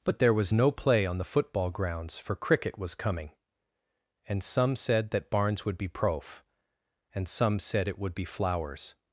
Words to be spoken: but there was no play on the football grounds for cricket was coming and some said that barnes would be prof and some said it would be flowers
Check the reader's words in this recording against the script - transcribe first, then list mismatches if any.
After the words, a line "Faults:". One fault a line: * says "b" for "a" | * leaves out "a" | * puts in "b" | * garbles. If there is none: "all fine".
but there was no play on the football grounds for cricket was coming and some said that barnes would be prof and some said it would be flowers
Faults:
all fine